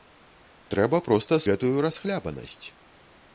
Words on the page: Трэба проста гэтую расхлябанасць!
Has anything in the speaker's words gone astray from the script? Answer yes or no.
no